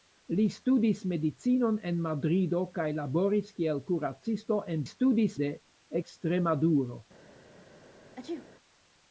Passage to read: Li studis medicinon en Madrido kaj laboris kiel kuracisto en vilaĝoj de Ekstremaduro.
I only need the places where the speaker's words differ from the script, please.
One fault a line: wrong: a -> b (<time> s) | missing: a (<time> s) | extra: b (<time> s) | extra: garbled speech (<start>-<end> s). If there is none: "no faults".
wrong: vilaĝoj -> studis (4.9 s)